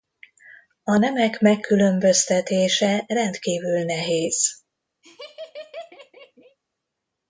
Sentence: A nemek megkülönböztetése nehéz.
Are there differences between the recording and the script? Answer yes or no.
yes